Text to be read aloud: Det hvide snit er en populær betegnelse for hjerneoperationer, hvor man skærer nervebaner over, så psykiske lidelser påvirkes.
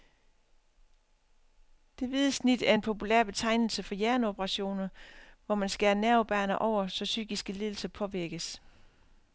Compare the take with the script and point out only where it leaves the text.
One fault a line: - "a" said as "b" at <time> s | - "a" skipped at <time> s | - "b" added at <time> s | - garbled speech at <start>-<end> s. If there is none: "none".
none